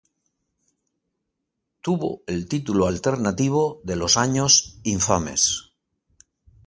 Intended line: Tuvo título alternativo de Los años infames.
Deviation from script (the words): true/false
true